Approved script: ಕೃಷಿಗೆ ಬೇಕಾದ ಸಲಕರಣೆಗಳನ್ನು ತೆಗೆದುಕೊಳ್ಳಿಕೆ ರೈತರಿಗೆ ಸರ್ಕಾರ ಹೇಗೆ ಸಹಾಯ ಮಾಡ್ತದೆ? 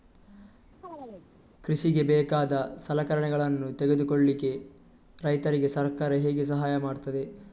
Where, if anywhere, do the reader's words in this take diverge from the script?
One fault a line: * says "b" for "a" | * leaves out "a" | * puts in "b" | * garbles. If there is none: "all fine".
all fine